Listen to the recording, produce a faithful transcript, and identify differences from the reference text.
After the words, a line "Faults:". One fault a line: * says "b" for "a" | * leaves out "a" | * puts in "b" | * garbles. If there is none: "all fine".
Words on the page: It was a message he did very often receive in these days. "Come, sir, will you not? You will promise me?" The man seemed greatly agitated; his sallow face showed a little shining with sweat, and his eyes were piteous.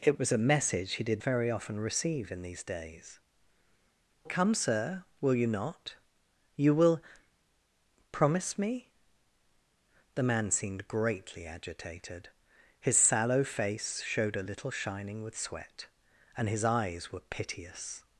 It was a message he did very often receive in these days. "Come, sir, will you not? You will promise me?" The man seemed greatly agitated; his sallow face showed a little shining with sweat, and his eyes were piteous.
Faults:
all fine